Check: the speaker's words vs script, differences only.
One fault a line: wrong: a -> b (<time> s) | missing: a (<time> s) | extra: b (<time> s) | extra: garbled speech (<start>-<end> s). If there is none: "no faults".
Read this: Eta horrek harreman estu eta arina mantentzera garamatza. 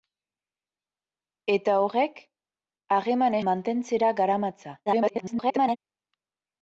missing: estu eta arina (3.4 s)
extra: garbled speech (4.9-5.8 s)